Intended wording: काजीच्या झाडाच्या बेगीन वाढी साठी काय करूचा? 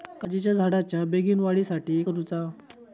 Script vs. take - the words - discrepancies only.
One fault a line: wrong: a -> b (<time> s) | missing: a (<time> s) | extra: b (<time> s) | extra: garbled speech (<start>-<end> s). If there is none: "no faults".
missing: काय (2.0 s)